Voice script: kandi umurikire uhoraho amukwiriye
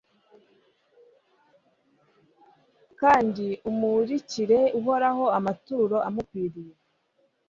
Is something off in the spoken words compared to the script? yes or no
yes